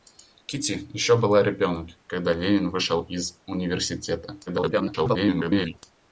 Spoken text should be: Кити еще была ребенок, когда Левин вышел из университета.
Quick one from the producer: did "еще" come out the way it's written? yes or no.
yes